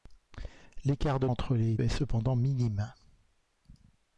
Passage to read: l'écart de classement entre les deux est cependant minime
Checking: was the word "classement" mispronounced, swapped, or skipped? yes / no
yes